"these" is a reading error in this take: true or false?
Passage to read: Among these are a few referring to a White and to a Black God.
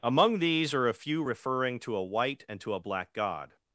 false